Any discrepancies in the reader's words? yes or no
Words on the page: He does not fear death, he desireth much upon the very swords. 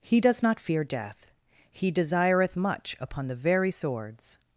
no